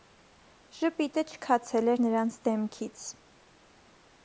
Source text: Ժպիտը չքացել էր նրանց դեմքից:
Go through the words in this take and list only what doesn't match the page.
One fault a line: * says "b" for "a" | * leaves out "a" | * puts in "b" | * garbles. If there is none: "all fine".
all fine